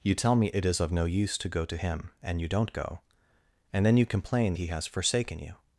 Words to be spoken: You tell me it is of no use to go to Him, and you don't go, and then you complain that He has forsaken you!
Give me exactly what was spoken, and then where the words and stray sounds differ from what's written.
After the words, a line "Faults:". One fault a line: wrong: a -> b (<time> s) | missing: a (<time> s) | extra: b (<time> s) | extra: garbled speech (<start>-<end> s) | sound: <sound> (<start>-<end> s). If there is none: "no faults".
You tell me it is of no use to go to Him, and you don't go, and then you complain He has forsaken you!
Faults:
missing: that (4.5 s)